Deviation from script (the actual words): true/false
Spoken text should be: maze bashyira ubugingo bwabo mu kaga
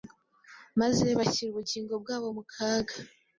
false